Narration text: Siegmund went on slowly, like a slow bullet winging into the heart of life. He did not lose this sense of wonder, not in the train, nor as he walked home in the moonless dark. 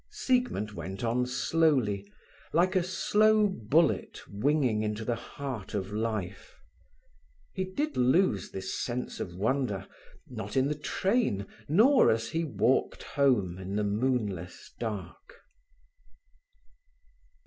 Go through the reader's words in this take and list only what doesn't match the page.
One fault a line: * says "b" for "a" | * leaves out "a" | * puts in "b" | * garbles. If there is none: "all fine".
* leaves out "not"